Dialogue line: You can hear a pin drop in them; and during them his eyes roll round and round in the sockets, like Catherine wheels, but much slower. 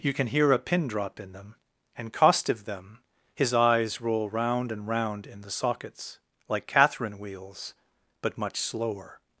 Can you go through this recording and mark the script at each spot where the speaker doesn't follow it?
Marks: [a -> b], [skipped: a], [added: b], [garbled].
You can hear a pin drop in them; and [during -> costive] them his eyes roll round and round in the sockets, like Catherine wheels, but much slower.